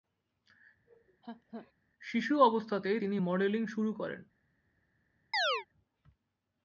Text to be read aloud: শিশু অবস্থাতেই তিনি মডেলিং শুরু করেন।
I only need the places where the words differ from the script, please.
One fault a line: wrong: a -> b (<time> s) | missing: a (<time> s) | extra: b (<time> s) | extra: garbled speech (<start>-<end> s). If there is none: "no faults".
no faults